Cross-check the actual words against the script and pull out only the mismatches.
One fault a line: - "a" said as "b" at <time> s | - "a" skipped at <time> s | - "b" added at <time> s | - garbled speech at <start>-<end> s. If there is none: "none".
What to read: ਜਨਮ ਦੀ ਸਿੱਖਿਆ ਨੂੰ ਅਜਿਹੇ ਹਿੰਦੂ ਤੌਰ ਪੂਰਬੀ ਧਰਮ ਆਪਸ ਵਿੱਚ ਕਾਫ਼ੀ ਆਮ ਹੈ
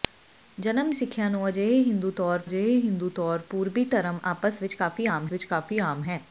- "ਦੀ" skipped at 0.9 s
- "ਅਜਿਹੇ ਹਿੰਦੂ ਤੌਰ" added at 2.4 s
- "ਵਿੱਚ ਕਾਫ਼ੀ ਆਮ" added at 5.3 s